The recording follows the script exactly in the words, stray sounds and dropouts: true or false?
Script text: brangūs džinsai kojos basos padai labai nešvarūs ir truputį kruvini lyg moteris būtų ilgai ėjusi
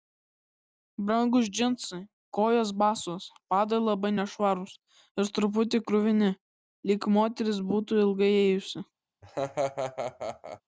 false